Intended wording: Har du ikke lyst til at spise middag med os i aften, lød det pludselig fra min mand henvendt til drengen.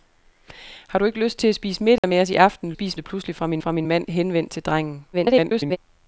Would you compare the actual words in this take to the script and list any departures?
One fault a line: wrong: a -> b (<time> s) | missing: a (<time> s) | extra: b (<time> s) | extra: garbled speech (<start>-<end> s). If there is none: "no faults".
wrong: lød -> spise (2.7 s)
extra: fra min (3.6 s)
extra: garbled speech (5.1-5.8 s)